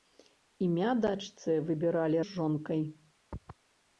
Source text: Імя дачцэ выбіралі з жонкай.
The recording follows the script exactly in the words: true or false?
true